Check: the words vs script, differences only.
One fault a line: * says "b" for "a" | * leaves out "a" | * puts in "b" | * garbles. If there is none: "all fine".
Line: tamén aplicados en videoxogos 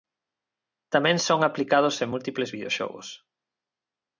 * puts in "son"
* puts in "múltiples"